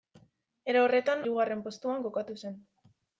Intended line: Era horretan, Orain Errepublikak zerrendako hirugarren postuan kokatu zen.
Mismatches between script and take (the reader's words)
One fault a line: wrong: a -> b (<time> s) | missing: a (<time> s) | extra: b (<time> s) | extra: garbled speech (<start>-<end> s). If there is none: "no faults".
missing: Orain Errepublikak zerrendako (1.2 s)